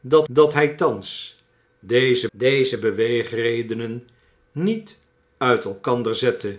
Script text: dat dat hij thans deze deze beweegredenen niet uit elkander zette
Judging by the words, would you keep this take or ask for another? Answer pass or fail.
pass